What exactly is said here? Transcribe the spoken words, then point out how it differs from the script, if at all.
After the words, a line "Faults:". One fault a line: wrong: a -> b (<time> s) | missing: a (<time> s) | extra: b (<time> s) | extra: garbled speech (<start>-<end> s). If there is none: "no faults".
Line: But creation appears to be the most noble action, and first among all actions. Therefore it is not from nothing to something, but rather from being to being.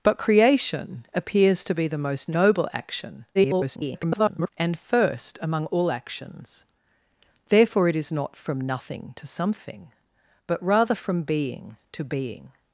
But creation appears to be the most noble action, [garbled] and first among all actions. Therefore it is not from nothing to something, but rather from being to being.
Faults:
extra: garbled speech (3.3-4.5 s)